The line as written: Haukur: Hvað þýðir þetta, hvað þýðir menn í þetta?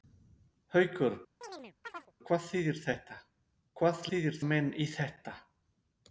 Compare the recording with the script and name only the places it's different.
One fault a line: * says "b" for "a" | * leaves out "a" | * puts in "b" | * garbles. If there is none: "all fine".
all fine